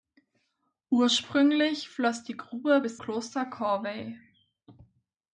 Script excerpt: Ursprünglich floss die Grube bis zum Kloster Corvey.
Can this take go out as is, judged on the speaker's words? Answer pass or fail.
fail